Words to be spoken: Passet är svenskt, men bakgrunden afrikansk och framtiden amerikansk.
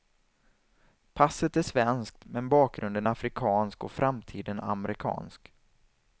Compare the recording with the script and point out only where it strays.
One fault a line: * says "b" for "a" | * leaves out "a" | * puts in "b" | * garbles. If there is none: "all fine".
all fine